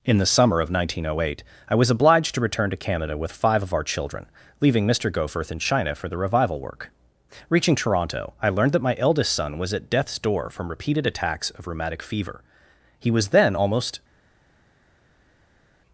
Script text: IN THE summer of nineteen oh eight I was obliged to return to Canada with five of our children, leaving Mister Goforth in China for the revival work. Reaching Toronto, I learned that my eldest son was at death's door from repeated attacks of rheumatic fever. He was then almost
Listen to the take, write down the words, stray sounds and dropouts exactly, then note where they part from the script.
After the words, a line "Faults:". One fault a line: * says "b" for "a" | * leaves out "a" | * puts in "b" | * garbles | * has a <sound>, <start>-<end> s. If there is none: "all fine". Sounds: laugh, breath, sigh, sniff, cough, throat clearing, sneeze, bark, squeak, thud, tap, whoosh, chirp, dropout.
IN THE summer of nineteen oh eight I was obliged to return to Canada with five of our children, leaving Mister Goforth in China for the revival work. Reaching Toronto, I learned that my eldest son was at death's door from repeated attacks of rheumatic fever. He was then almost
Faults:
all fine